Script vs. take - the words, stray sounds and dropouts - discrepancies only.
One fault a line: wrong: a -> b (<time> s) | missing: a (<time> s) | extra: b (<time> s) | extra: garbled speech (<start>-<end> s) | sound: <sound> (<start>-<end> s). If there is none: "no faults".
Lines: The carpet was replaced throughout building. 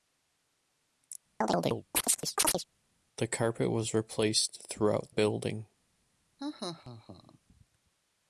sound: chirp (1.4-2.6 s)
sound: laugh (6.4-7.4 s)